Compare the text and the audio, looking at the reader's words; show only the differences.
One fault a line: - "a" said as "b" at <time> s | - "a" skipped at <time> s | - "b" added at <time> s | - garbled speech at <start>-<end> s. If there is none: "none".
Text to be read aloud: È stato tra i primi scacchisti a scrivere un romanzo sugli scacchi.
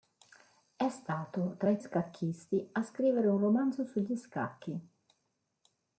- "primi" skipped at 1.8 s